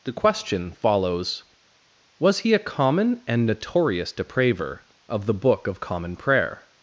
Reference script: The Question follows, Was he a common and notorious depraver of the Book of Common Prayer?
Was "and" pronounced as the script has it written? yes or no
yes